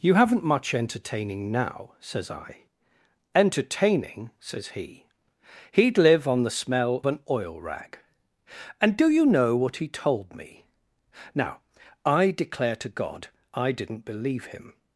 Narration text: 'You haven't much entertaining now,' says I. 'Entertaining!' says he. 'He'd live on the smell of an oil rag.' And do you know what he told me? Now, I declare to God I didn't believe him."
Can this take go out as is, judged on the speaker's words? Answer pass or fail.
fail